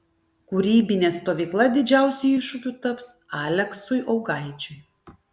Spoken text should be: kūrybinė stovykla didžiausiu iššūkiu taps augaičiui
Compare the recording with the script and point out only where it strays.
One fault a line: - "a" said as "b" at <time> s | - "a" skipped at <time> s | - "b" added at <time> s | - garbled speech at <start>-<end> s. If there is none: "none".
- "aleksui" added at 3.4 s